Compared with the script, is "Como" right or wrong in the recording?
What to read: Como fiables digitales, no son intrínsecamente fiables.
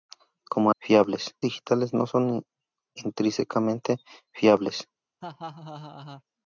right